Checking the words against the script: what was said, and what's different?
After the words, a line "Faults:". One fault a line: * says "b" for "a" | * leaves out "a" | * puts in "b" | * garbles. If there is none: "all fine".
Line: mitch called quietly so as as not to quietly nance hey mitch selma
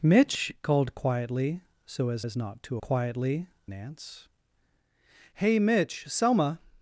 mitch called quietly so as as not to quietly nance hey mitch selma
Faults:
all fine